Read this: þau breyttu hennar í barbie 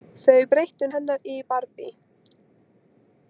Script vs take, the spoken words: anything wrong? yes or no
no